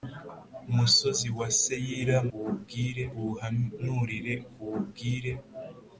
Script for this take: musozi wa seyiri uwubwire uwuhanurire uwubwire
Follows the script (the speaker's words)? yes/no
yes